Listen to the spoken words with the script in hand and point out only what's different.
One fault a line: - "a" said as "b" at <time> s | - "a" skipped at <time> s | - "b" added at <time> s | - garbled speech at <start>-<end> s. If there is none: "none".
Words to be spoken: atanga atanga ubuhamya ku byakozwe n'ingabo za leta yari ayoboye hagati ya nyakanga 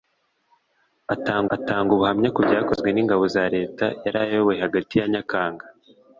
none